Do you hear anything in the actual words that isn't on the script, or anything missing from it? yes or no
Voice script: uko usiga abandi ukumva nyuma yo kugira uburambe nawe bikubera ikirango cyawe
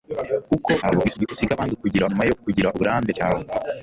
yes